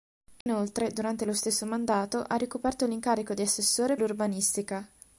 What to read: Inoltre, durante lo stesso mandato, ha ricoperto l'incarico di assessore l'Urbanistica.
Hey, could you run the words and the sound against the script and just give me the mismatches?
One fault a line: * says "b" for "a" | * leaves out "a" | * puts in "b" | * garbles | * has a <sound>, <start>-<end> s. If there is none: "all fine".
* has a dropout, 0.4-0.5 s